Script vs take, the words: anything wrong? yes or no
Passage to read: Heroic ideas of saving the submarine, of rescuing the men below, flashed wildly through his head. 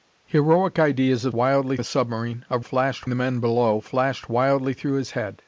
yes